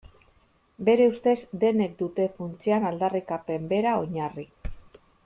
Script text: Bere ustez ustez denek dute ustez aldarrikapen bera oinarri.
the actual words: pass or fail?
fail